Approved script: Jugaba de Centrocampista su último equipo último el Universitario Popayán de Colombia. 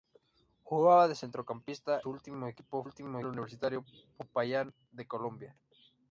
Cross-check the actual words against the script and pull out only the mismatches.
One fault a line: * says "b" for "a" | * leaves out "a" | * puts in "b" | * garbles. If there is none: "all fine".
all fine